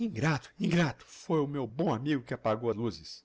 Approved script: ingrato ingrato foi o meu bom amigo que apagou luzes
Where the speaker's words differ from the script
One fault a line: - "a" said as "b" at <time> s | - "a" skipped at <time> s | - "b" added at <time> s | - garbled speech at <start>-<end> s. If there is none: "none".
none